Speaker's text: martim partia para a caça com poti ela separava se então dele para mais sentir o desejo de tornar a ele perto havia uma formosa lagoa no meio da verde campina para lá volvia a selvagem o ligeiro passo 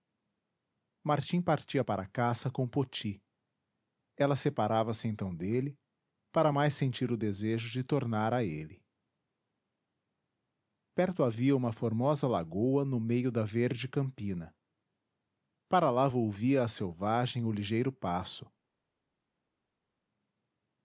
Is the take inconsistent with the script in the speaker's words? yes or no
no